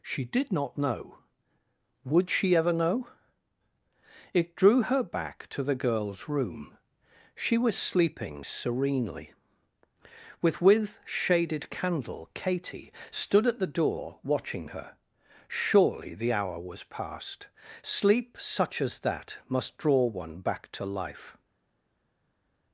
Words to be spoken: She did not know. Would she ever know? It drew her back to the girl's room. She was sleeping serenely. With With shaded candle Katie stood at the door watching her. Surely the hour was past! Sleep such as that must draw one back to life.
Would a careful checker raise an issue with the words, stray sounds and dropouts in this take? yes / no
no